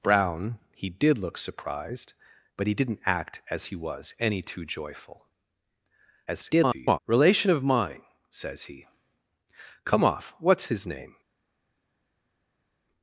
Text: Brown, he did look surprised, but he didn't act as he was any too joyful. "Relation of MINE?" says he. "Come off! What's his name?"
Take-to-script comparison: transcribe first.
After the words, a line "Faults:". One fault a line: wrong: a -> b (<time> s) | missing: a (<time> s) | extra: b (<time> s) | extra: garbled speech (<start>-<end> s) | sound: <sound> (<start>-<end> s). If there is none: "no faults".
Brown, he did look surprised, but he didn't act as he was any too joyful. [garbled] "Relation of MINE?" says he. "Come off! What's his name?"
Faults:
extra: garbled speech (6.3-7.0 s)